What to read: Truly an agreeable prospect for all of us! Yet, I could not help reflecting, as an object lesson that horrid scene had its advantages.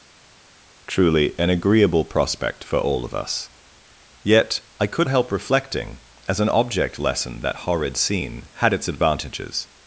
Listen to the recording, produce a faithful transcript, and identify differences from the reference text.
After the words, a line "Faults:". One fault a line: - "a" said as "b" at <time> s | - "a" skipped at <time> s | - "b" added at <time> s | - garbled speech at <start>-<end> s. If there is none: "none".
Truly an agreeable prospect for all of us! Yet, I could help reflecting, as an object lesson that horrid scene had its advantages.
Faults:
- "not" skipped at 5.1 s